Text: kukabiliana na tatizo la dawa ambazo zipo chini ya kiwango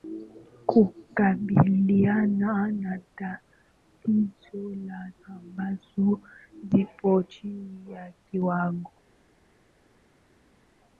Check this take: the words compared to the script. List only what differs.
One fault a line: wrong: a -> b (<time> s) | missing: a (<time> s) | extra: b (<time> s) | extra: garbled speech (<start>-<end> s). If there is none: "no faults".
missing: dawa (5.1 s)